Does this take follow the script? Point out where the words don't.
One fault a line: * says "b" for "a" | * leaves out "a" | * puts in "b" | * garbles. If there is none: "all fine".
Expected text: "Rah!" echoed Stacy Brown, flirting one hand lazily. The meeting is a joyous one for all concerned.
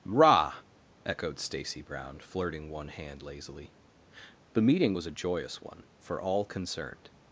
* says "was" for "is"